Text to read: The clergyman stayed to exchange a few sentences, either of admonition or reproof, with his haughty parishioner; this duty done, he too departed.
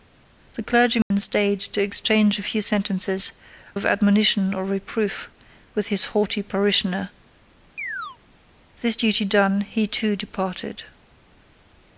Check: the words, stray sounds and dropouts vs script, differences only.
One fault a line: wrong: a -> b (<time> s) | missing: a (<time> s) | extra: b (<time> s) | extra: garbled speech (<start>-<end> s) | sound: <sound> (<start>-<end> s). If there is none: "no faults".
sound: dropout (1.0-1.1 s)
missing: either (3.3 s)
sound: chirp (7.8-8.2 s)